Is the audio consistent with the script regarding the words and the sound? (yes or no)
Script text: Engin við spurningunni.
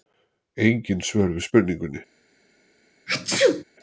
no